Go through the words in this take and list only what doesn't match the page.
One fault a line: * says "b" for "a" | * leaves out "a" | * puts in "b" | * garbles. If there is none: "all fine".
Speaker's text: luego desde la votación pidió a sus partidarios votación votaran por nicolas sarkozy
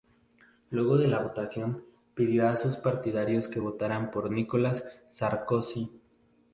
* says "de" for "desde"
* says "que" for "votación"